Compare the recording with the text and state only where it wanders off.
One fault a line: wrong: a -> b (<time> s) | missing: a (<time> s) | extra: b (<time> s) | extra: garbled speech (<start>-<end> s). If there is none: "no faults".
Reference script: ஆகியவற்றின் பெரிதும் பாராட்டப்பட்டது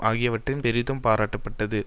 no faults